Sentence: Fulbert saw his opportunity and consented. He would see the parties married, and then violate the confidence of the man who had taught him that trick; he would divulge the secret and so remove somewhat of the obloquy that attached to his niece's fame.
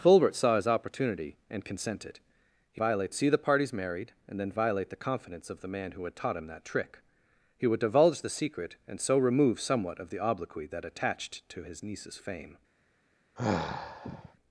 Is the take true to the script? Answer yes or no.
no